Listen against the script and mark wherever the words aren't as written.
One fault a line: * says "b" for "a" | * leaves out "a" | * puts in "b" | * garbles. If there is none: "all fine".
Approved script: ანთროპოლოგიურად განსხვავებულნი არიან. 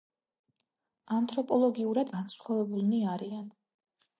all fine